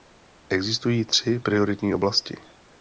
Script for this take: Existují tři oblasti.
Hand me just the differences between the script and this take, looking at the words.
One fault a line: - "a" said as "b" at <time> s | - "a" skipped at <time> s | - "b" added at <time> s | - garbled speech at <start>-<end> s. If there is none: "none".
- "prioritní" added at 1.4 s